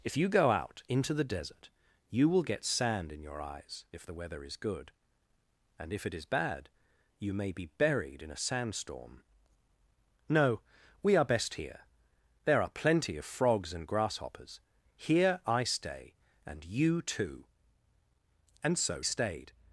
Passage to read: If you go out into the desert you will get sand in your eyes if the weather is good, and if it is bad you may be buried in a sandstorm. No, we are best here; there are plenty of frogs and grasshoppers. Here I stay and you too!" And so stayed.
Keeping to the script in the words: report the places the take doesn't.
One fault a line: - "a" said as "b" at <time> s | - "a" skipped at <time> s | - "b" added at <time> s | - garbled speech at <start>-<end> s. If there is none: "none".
none